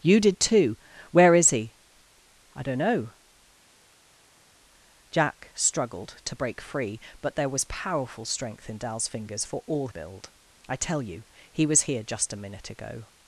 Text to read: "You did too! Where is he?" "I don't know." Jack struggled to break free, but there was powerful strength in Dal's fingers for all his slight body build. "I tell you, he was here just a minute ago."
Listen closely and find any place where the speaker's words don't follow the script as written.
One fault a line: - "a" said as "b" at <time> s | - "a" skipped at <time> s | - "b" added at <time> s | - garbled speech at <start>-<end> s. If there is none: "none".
- "his slight body" skipped at 9.9 s